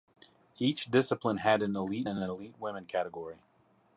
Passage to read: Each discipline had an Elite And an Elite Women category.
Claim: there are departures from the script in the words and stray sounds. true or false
false